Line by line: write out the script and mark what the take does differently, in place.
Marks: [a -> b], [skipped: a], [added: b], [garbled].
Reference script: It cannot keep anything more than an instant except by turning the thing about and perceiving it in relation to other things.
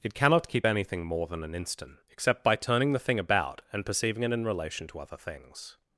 It cannot keep anything more than an instant except by turning the thing about and perceiving it in relation to other things.